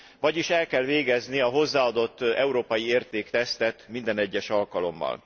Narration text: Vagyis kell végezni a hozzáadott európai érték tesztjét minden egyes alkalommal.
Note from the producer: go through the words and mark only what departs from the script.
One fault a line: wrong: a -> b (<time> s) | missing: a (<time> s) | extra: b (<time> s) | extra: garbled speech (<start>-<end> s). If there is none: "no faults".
extra: el (0.5 s)